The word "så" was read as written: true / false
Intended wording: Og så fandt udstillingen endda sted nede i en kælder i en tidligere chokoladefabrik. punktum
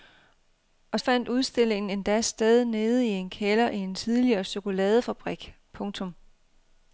false